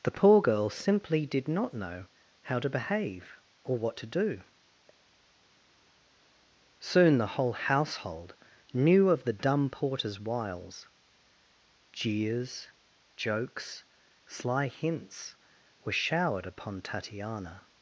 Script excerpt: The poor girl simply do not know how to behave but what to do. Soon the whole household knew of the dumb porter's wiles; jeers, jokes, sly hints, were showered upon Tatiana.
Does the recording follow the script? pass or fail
fail